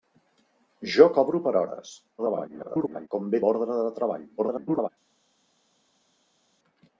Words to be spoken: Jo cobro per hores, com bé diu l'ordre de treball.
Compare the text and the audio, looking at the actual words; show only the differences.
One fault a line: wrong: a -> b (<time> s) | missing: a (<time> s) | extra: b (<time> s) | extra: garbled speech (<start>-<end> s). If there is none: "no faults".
extra: garbled speech (2.2-3.1 s)
missing: diu (3.4 s)
extra: garbled speech (4.4-4.9 s)